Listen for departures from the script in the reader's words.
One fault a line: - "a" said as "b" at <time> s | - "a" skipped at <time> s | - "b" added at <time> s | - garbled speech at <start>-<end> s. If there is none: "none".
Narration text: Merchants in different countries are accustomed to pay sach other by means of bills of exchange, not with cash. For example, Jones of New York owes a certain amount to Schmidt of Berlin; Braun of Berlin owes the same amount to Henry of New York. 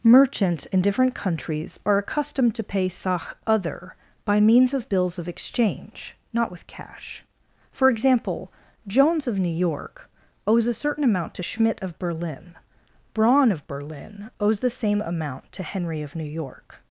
none